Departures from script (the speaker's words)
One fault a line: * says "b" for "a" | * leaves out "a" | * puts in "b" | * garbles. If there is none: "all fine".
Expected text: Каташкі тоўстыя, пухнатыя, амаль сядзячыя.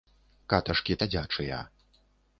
* leaves out "тоўстыя пухнатыя амаль"